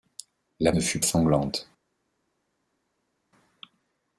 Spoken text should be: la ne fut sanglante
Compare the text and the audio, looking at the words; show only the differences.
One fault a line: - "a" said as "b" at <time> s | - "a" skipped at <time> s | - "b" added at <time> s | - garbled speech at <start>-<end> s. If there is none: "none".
none